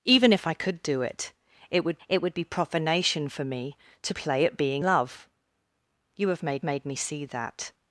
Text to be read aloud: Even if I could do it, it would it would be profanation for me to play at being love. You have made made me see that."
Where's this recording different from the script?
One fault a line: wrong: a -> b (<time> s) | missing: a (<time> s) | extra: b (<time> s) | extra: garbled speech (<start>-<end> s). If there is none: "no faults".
no faults